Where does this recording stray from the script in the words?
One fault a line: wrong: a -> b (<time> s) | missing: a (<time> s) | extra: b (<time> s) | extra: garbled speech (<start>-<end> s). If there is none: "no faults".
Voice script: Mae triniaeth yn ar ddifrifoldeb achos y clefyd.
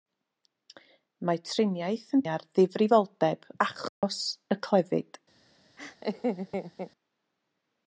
no faults